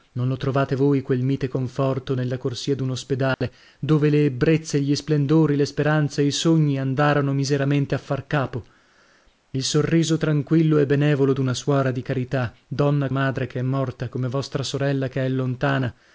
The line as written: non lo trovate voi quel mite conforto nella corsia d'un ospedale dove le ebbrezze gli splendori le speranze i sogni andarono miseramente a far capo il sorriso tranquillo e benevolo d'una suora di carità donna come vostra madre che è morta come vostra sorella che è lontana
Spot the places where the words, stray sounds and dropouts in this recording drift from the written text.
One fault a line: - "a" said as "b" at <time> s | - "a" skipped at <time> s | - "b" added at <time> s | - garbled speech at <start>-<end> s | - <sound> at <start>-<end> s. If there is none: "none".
- dropout at 3.3-3.4 s
- "come vostra" skipped at 13.1 s